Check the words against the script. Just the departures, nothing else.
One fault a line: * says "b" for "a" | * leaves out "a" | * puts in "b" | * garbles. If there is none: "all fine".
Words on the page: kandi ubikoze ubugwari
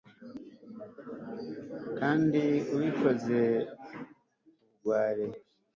all fine